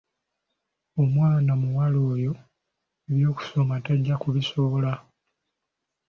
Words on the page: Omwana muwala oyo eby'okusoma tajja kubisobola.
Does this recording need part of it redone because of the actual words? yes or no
no